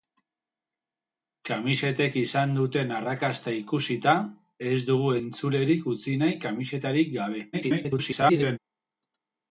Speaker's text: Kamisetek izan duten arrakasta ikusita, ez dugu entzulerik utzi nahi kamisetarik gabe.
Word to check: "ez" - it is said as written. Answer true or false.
true